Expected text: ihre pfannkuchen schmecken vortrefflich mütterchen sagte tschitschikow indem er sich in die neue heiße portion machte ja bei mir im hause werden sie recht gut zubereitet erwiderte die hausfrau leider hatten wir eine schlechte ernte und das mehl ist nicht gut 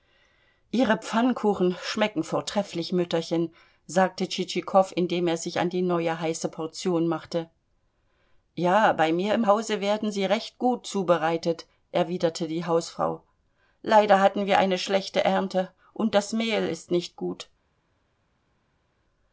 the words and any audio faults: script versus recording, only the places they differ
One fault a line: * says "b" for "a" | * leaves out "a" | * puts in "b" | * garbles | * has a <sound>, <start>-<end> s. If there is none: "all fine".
* says "an" for "in"